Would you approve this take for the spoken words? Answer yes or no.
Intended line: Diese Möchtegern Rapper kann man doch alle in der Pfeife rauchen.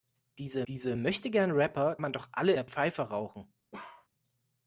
no